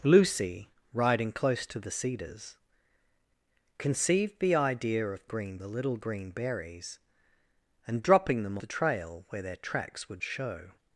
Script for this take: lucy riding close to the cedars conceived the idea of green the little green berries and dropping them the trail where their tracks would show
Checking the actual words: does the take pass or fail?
pass